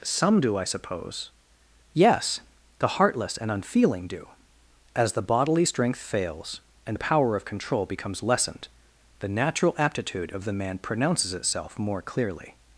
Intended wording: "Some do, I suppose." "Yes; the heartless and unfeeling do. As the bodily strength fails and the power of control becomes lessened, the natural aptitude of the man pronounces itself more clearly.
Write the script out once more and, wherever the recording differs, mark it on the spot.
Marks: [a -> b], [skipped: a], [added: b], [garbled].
"Some do, I suppose." "Yes; the heartless and unfeeling do. As the bodily strength fails and the power of control becomes lessened, the natural aptitude of the man pronounces itself more clearly.